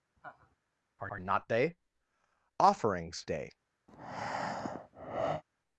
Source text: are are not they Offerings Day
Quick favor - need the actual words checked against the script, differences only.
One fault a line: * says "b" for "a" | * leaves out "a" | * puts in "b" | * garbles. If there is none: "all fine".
all fine